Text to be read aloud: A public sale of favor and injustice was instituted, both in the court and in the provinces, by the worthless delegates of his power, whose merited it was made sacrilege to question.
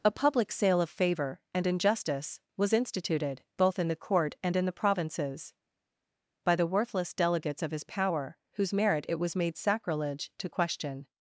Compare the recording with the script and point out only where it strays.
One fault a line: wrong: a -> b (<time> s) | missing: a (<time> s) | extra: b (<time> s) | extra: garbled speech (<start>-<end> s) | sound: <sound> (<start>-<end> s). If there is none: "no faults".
wrong: merited -> merit (8.7 s)